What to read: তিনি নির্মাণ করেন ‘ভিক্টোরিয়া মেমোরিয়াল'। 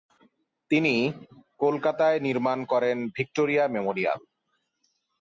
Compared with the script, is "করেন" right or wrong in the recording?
right